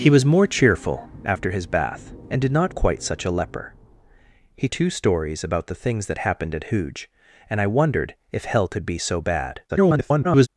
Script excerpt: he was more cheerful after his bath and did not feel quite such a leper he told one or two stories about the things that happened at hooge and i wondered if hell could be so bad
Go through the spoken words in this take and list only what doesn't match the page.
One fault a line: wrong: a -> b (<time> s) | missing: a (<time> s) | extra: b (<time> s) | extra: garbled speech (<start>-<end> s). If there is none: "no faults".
missing: feel (2.7 s)
missing: told one or (4.7 s)
extra: garbled speech (9.7-10.5 s)